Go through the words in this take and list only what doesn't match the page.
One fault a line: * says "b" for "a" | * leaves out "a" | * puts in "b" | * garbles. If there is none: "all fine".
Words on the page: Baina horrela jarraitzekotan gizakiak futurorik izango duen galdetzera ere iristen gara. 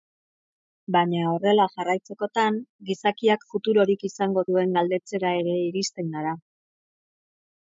all fine